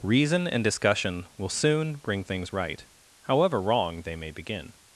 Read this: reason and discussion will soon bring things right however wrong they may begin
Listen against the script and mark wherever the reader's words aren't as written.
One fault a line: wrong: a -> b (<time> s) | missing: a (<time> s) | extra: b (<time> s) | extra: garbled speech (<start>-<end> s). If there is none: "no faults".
no faults